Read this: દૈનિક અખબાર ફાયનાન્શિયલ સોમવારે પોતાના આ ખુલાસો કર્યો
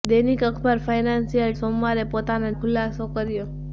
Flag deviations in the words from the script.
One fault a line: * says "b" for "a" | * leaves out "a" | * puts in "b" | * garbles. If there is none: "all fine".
all fine